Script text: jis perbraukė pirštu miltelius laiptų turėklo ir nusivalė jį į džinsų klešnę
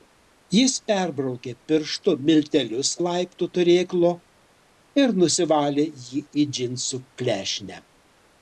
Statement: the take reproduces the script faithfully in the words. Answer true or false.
true